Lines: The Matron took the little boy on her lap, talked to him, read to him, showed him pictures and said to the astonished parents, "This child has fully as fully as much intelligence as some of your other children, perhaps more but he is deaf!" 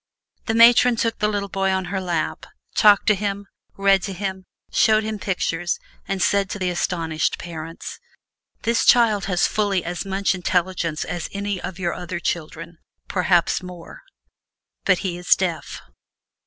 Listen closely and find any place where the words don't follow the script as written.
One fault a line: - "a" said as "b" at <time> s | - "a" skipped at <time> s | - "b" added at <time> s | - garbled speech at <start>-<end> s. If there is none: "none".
- "fully as" skipped at 10.0 s
- "some" said as "any" at 11.3 s